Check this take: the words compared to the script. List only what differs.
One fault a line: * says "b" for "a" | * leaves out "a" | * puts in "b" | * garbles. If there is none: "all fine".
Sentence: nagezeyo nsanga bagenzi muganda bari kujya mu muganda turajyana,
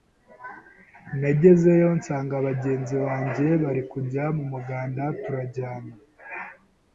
* says "banjye" for "muganda"